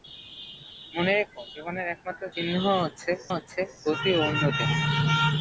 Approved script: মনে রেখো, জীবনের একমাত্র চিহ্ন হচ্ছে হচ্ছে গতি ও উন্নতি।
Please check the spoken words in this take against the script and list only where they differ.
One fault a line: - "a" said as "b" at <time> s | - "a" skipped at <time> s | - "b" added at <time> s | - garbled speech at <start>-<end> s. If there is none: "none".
none